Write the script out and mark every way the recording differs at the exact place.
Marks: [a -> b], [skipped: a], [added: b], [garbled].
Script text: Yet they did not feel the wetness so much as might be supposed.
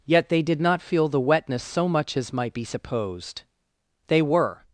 Yet they did not feel the wetness so much as might be supposed. [added: They were]